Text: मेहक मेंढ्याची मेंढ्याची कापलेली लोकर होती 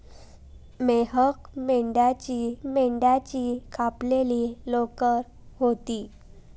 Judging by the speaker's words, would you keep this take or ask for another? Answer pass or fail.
pass